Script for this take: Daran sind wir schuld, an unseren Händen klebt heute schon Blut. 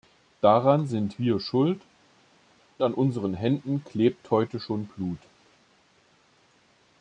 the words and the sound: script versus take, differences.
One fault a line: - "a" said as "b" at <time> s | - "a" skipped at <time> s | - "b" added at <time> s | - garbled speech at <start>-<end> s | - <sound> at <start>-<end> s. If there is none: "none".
none